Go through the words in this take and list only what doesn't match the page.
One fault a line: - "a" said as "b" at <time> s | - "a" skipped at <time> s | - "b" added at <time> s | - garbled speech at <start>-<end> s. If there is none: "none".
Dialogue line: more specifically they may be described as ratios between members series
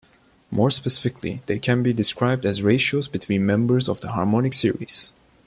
- "may" said as "can" at 1.6 s
- "of the harmonic" added at 3.9 s